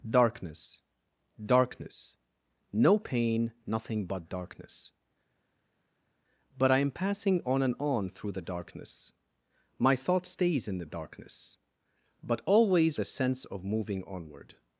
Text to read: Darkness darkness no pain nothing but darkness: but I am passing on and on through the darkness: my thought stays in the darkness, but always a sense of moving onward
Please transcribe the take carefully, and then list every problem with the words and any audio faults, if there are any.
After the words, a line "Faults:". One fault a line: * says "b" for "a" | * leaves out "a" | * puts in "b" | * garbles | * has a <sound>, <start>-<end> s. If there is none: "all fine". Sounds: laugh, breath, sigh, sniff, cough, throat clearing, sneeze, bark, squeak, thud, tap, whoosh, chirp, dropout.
Darkness darkness no pain nothing but darkness: but I am passing on and on through the darkness: my thought stays in the darkness, but always a sense of moving onward
Faults:
all fine